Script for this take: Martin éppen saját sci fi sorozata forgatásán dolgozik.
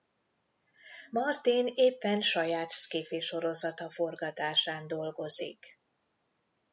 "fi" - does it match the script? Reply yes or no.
yes